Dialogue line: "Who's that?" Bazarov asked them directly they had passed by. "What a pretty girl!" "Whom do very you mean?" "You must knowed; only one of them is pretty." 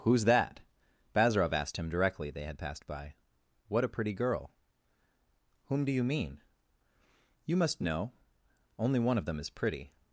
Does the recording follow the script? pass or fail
fail